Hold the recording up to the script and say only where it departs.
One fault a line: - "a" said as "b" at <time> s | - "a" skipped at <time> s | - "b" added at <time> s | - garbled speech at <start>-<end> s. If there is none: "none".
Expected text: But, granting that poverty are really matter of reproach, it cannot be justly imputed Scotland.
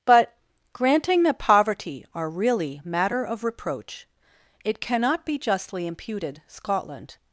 none